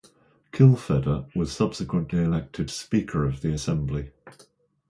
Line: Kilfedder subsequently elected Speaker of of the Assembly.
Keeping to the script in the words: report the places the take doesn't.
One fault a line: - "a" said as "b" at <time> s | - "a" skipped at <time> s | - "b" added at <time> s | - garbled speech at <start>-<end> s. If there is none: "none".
- "was" added at 1.4 s
- "of" skipped at 3.4 s